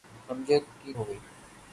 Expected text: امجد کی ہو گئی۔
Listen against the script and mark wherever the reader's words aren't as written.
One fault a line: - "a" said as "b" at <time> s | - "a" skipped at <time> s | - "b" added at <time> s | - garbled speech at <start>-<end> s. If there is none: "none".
none